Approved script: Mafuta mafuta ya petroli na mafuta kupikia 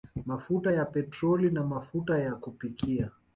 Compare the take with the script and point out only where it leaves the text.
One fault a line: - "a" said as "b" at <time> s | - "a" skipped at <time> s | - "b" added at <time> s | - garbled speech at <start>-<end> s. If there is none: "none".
- "mafuta" skipped at 0.7 s
- "ya" added at 2.2 s